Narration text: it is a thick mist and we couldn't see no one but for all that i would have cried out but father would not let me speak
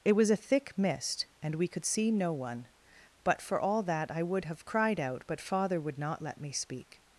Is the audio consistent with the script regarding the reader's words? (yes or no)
no